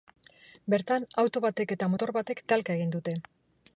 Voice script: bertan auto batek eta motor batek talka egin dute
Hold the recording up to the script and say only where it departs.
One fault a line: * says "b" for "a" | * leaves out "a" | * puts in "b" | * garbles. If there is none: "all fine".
all fine